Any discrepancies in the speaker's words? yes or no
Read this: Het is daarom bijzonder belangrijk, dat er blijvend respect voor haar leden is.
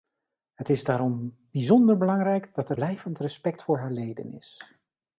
no